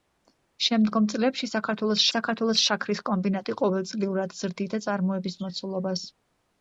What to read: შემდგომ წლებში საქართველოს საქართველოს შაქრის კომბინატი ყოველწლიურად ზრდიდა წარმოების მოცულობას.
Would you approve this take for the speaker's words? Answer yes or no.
yes